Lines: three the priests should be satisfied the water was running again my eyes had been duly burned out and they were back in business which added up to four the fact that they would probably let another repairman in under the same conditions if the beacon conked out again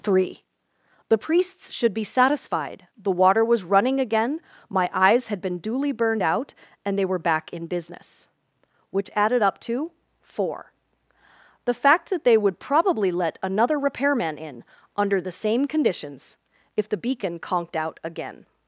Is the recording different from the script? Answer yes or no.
no